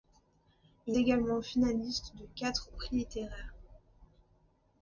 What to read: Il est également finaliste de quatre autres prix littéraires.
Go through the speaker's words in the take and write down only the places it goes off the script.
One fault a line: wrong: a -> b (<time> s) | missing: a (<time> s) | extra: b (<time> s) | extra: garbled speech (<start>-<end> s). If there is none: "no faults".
missing: est (1.0 s)
missing: autres (2.7 s)